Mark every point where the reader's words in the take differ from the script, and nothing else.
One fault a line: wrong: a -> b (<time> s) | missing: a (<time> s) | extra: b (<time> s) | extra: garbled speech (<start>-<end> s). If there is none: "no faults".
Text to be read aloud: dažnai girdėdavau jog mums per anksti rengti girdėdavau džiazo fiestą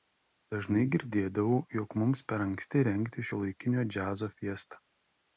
wrong: girdėdavau -> šiuolaikinio (3.3 s)